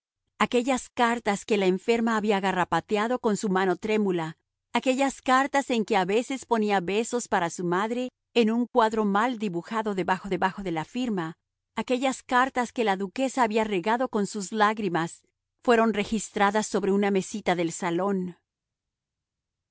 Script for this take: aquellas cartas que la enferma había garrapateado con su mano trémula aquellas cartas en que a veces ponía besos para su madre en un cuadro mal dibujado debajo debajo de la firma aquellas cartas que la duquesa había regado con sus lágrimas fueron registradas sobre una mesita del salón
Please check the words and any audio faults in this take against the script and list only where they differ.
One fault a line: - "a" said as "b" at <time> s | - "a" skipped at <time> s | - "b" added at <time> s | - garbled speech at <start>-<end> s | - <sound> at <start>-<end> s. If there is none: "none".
none